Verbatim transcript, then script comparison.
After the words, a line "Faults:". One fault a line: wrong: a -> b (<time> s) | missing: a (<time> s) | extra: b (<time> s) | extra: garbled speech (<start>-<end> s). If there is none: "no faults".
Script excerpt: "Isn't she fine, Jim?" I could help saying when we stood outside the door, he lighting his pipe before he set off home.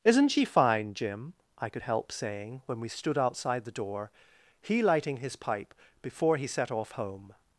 "Isn't she fine, Jim?" I could help saying when we stood outside the door, he lighting his pipe before he set off home.
Faults:
no faults